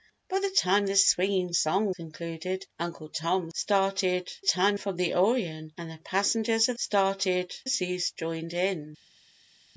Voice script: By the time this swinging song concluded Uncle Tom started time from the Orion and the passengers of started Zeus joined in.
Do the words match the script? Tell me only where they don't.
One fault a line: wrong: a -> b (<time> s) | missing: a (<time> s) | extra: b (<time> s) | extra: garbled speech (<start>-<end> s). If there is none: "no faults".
no faults